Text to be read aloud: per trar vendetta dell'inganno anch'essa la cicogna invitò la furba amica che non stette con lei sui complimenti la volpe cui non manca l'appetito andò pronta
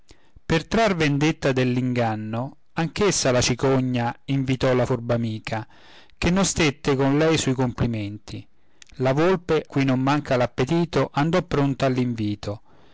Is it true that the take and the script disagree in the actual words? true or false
false